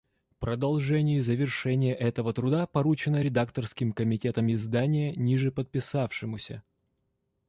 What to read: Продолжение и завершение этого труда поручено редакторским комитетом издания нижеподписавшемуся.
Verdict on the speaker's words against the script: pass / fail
pass